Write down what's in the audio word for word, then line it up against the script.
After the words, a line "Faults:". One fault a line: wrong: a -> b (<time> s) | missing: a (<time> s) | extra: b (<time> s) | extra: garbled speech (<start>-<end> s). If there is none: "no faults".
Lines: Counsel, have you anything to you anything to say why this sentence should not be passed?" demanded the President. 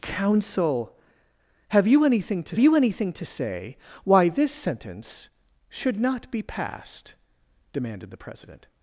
Counsel, have you anything to you anything to say why this sentence should not be passed?" demanded the President.
Faults:
no faults